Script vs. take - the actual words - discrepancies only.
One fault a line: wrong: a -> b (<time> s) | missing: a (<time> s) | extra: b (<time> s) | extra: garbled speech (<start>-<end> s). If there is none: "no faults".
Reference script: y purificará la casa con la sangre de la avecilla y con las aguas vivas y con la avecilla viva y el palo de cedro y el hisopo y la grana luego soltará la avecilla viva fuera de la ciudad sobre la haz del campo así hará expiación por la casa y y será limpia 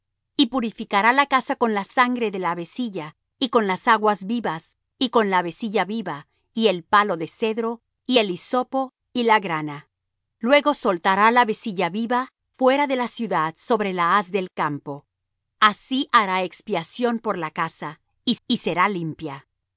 no faults